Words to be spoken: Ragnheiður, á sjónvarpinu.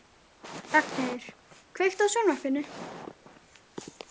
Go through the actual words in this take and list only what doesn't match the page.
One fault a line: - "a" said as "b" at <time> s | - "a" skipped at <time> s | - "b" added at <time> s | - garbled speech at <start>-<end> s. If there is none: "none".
- "kveiktu" added at 1.8 s